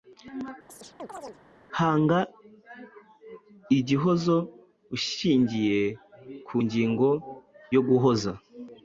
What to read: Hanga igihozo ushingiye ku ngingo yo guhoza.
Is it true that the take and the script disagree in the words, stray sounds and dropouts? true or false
true